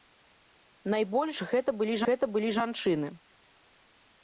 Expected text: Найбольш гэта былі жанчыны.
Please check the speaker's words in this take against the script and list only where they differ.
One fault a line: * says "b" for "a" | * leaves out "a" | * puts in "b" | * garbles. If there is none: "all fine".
* puts in "гэта былі"